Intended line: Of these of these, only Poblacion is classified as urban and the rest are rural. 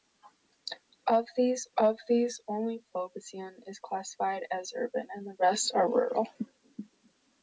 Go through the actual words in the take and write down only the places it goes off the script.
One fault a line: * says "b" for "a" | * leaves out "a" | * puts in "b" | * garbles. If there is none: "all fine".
all fine